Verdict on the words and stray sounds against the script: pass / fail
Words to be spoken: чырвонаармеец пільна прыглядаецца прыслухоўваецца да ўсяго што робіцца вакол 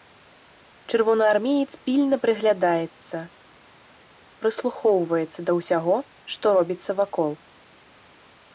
pass